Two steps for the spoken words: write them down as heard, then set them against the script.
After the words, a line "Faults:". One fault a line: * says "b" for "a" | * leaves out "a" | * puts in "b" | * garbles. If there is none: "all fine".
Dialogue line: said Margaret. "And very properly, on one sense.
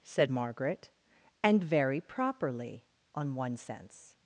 said Margaret. "And very properly, on one sense.
Faults:
all fine